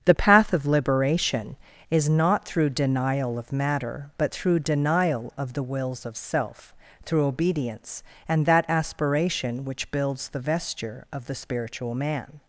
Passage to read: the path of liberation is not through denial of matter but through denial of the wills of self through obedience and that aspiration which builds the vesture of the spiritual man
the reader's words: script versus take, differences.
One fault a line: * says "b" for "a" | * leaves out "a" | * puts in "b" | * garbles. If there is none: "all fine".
all fine